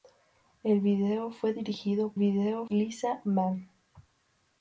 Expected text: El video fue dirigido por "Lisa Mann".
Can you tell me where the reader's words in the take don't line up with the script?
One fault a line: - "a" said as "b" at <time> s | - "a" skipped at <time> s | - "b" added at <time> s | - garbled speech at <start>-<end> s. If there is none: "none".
- "por" said as "video" at 2.2 s